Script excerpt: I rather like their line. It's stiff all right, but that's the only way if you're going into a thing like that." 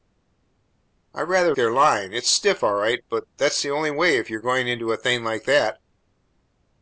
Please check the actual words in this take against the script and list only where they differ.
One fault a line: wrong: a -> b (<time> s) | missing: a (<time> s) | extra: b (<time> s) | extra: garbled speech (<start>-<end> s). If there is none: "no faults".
missing: like (1.5 s)